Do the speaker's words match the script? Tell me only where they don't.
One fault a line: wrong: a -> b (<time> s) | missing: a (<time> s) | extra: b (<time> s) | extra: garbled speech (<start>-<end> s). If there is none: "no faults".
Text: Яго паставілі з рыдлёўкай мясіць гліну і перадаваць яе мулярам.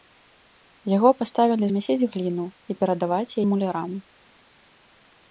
missing: з рыдлёўкай (1.7 s)
missing: яе (3.4 s)